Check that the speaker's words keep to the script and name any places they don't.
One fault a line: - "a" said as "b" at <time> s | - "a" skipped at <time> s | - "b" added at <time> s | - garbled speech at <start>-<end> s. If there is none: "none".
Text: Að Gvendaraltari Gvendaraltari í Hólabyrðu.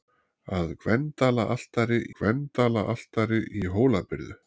none